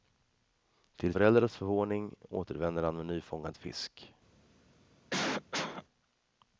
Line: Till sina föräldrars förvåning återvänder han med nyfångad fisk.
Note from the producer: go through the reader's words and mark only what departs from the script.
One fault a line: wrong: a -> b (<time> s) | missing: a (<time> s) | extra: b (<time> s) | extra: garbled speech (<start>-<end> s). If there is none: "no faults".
missing: sina (1.1 s)